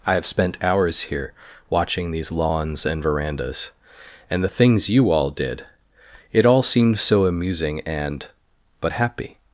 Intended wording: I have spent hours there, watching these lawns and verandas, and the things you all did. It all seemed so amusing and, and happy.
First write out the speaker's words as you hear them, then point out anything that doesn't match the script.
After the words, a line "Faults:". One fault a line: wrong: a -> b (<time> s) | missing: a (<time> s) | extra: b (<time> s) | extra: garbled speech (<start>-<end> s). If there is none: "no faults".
I have spent hours here, watching these lawns and verandas, and the things you all did. It all seemed so amusing and, but happy.
Faults:
wrong: there -> here (1.0 s)
wrong: and -> but (8.8 s)